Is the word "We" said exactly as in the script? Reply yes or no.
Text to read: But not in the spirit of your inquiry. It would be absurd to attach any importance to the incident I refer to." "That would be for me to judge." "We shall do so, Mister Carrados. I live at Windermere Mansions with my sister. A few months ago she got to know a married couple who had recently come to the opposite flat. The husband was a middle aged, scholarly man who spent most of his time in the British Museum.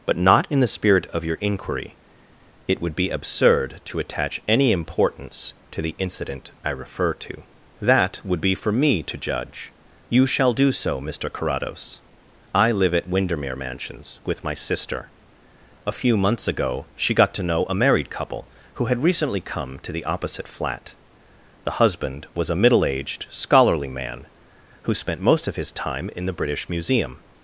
no